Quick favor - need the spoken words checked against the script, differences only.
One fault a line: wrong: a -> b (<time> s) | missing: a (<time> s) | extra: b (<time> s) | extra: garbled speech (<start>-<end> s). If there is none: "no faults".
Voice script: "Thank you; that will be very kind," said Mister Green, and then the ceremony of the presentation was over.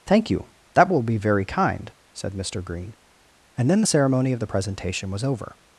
no faults